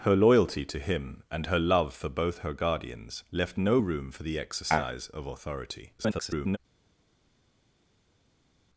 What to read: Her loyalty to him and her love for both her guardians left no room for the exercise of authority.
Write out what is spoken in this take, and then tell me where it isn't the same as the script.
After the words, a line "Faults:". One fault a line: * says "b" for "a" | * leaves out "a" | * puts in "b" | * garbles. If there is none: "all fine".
Her loyalty to him and her love for both her guardians left no room for the exercise of authority. [garbled]
Faults:
* garbles